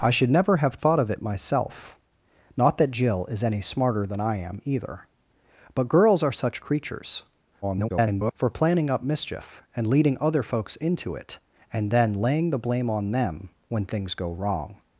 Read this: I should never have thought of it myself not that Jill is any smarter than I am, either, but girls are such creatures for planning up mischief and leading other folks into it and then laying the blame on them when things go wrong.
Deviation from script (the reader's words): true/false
true